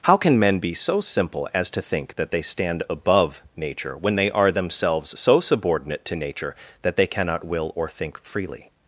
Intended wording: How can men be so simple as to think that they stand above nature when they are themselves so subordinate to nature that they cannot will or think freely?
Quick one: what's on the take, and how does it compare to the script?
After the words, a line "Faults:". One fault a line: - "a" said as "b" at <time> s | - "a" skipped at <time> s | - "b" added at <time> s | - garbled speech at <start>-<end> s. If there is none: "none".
How can men be so simple as to think that they stand above nature when they are themselves so subordinate to nature that they cannot will or think freely?
Faults:
none